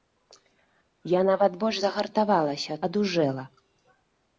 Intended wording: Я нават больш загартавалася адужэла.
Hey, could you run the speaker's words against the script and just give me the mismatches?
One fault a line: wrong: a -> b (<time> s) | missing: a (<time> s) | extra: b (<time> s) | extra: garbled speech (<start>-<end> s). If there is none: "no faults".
no faults